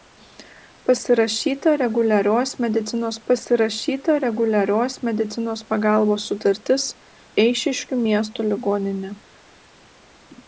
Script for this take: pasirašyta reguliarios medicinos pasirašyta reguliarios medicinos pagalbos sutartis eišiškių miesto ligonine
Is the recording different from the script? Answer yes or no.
no